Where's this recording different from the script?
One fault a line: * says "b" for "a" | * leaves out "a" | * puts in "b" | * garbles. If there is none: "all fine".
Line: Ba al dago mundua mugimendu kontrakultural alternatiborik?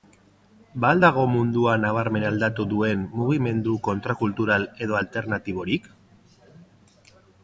* puts in "nabarmen aldatu duen"
* puts in "edo"